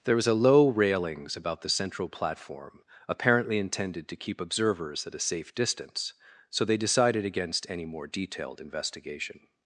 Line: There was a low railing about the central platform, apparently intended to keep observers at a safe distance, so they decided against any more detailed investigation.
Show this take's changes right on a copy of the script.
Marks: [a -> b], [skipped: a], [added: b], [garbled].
There was a low [railing -> railings] about the central platform, apparently intended to keep observers at a safe distance, so they decided against any more detailed investigation.